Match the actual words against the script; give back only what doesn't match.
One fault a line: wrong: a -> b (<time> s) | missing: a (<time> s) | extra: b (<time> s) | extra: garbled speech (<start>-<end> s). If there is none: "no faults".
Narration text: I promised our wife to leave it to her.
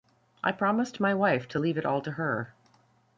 wrong: our -> my (1.0 s)
extra: all (1.8 s)